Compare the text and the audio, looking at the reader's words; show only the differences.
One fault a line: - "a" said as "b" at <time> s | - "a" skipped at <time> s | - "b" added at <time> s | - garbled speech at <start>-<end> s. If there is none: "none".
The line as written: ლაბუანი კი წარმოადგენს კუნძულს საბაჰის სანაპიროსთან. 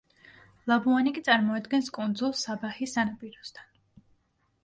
none